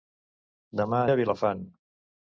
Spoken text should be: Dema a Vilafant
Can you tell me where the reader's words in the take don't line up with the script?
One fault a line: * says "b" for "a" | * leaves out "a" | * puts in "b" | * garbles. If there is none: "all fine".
all fine